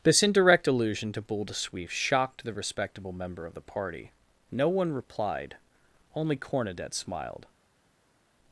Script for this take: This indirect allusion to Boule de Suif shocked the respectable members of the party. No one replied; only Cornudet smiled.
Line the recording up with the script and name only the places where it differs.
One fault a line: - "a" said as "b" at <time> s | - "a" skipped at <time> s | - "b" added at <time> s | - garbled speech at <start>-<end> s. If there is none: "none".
- "members" said as "member" at 3.1 s